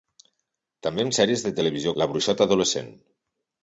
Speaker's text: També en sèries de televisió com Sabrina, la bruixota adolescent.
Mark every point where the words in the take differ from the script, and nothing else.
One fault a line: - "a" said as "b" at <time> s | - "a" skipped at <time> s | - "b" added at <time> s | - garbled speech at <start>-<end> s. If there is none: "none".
- "com Sabrina" skipped at 1.9 s